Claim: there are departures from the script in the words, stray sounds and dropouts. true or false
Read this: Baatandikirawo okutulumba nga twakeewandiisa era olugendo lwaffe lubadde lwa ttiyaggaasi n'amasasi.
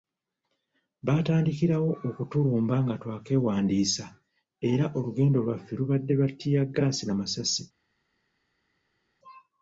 false